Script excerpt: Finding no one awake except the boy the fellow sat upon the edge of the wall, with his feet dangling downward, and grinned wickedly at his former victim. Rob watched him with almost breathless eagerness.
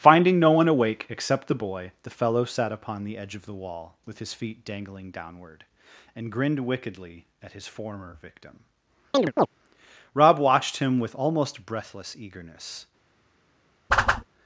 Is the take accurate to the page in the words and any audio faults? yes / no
no